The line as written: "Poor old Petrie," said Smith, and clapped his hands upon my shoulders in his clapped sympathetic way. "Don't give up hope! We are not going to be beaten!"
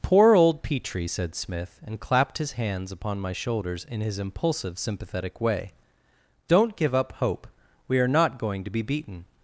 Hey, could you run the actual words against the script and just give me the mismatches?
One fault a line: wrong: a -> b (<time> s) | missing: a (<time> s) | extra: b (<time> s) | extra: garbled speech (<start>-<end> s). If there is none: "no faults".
wrong: clapped -> impulsive (4.2 s)